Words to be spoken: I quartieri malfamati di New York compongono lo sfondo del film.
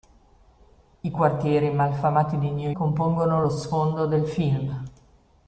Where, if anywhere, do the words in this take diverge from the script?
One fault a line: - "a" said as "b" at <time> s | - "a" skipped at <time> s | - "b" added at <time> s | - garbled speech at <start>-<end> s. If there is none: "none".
- "York" skipped at 2.7 s